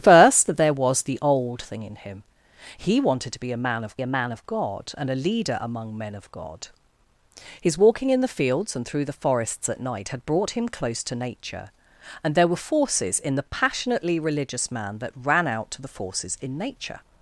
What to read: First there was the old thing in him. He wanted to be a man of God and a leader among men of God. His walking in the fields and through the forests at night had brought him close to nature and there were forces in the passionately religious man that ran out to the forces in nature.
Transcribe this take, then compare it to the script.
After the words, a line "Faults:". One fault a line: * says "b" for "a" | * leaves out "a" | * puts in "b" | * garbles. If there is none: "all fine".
First there was the old thing in him. He wanted to be a man of a man of God and a leader among men of God. His walking in the fields and through the forests at night had brought him close to nature and there were forces in the passionately religious man that ran out to the forces in nature.
Faults:
* puts in "a man of"